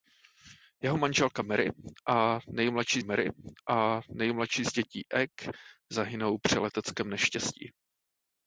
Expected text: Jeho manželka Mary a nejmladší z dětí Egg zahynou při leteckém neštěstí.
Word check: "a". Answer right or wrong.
right